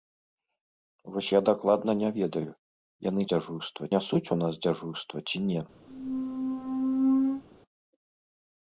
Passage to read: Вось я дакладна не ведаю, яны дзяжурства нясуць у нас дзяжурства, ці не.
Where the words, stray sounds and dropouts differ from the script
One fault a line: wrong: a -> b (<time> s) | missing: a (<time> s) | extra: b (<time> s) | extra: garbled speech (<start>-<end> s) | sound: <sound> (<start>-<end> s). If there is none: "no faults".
sound: squeak (5.9-7.4 s)